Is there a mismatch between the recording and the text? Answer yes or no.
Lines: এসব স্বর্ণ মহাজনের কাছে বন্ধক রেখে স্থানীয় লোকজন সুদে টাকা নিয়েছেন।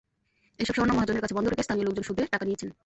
no